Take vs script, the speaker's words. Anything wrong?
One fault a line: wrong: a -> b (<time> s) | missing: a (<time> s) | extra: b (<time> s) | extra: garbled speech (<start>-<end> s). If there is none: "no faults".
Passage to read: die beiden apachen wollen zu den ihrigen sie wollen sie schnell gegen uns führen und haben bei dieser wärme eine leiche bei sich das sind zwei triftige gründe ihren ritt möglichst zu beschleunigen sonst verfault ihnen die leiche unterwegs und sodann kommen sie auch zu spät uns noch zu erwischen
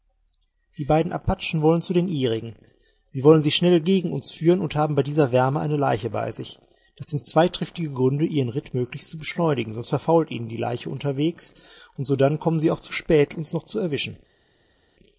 no faults